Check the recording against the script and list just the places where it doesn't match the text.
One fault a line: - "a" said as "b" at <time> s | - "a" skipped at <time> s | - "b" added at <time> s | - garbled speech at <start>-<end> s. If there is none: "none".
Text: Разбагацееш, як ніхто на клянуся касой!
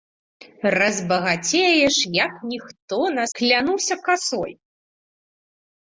none